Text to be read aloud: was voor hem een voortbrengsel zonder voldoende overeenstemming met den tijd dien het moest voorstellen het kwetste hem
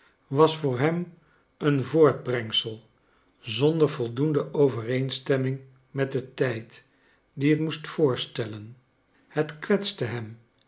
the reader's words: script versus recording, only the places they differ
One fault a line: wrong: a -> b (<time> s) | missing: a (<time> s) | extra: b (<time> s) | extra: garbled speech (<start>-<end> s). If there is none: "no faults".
no faults